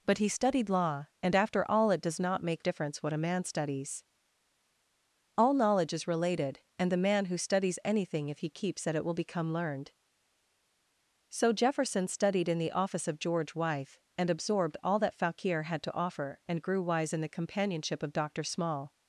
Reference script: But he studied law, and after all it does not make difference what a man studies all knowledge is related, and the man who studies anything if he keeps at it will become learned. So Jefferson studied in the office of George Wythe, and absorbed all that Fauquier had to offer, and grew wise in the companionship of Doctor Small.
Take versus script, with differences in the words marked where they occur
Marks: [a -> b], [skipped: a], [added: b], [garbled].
But he studied law, and after all it does not make difference what a man studies all knowledge is related, and the man who studies anything if he keeps at it will become learned. So Jefferson studied in the office of George Wythe, and absorbed all that Fauquier had to offer, and grew wise in the companionship of Doctor Small.